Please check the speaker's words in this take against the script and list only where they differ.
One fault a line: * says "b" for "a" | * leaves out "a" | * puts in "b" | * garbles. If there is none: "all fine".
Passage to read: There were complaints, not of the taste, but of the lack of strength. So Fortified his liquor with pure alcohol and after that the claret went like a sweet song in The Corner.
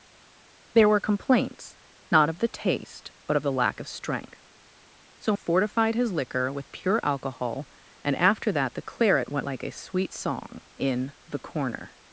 all fine